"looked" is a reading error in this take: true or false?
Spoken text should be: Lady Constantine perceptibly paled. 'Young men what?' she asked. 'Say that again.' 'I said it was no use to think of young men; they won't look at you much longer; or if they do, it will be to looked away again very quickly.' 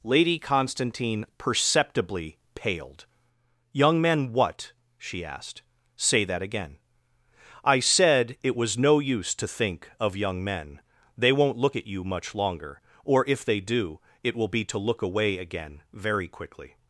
true